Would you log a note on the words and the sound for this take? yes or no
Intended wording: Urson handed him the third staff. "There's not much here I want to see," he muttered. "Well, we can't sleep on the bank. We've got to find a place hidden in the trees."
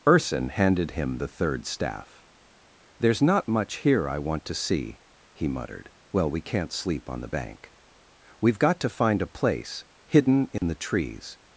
yes